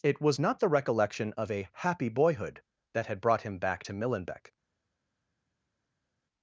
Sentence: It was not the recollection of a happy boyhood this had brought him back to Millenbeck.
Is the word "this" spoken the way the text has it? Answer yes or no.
no